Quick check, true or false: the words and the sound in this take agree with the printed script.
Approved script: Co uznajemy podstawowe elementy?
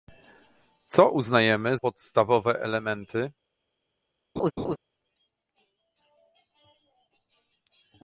false